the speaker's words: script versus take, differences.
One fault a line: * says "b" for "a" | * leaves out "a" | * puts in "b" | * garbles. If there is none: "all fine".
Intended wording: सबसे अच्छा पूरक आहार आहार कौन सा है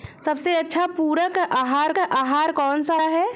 all fine